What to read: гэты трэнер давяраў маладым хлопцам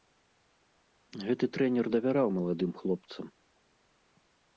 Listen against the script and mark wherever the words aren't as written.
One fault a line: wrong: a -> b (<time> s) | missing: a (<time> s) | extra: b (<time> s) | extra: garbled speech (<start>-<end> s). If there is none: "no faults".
no faults